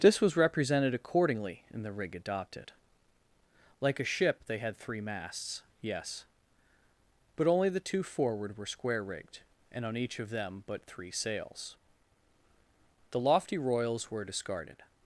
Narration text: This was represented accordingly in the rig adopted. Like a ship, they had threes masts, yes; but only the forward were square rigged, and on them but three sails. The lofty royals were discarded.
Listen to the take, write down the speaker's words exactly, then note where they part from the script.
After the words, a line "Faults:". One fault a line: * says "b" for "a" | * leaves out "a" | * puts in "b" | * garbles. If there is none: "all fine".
This was represented accordingly in the rig adopted. Like a ship, they had three masts, yes; but only the two forward were square rigged, and on each of them but three sails. The lofty royals were discarded.
Faults:
* says "three" for "threes"
* puts in "two"
* puts in "each of"